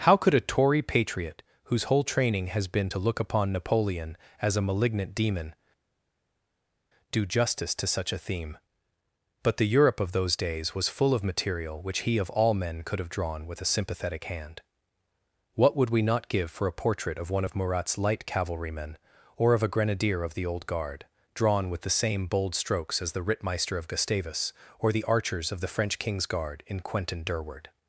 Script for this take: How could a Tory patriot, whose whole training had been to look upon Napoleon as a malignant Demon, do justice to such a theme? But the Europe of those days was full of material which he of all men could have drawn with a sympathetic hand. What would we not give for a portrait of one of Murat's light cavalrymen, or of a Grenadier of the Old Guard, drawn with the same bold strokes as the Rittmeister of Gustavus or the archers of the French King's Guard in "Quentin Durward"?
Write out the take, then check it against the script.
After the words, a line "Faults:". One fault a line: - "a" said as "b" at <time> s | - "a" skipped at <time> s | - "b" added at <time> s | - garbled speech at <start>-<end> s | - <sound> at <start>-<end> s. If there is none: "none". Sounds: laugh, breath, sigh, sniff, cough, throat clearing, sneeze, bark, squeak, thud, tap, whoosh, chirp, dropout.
How could a Tory patriot, whose whole training has been to look upon Napoleon as a malignant Demon, do justice to such a theme? But the Europe of those days was full of material which he of all men could have drawn with a sympathetic hand. What would we not give for a portrait of one of Murat's light cavalrymen, or of a Grenadier of the Old Guard, drawn with the same bold strokes as the Rittmeister of Gustavus or the archers of the French King's Guard in "Quentin Durward"?
Faults:
- "had" said as "has" at 2.5 s